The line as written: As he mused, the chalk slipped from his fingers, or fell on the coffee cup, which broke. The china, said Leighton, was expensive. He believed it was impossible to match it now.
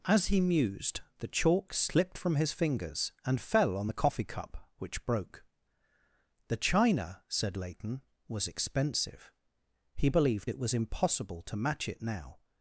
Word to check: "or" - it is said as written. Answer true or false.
false